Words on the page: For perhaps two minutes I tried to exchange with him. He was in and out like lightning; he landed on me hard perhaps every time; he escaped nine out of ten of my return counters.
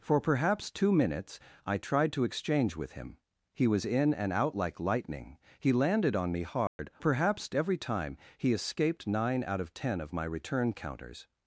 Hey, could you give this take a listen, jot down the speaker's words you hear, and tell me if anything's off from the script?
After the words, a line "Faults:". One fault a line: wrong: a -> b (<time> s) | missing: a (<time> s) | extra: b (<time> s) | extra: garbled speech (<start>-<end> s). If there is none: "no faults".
For perhaps two minutes I tried to exchange with him. He was in and out like lightning; he landed on me hard perhaps every time; he escaped nine out of ten of my return counters.
Faults:
no faults